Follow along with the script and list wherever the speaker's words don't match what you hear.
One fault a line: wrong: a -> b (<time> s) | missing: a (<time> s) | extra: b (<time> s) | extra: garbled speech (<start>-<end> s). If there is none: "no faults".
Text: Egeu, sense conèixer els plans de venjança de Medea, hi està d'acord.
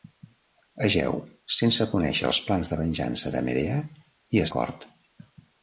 missing: està (4.5 s)